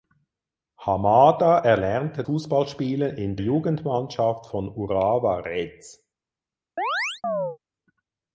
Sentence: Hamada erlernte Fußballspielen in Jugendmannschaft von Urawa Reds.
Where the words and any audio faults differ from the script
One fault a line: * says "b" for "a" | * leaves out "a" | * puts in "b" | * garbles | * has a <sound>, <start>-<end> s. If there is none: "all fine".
* has a chirp, 6.8-7.6 s